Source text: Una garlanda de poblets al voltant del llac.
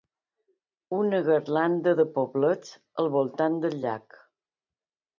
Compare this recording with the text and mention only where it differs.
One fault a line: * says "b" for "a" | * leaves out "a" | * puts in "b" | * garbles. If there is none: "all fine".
all fine